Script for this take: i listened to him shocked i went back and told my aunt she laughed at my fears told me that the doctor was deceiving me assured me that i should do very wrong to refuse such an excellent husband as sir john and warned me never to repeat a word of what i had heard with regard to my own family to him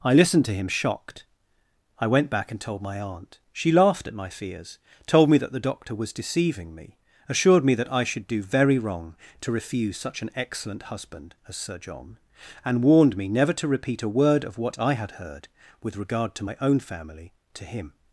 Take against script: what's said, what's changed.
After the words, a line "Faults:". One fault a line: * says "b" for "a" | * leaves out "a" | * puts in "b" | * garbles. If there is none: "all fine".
i listened to him shocked i went back and told my aunt she laughed at my fears told me that the doctor was deceiving me assured me that i should do very wrong to refuse such an excellent husband as sir john and warned me never to repeat a word of what i had heard with regard to my own family to him
Faults:
all fine